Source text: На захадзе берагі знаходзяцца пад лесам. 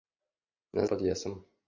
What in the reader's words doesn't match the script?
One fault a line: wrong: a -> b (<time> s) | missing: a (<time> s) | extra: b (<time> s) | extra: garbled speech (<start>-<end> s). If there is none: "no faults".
missing: захадзе берагі знаходзяцца (0.8 s)